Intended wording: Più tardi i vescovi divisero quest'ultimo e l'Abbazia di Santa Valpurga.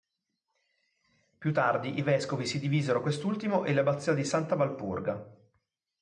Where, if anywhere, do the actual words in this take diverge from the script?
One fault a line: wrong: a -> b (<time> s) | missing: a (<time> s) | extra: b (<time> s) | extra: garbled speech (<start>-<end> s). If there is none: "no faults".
extra: si (2.5 s)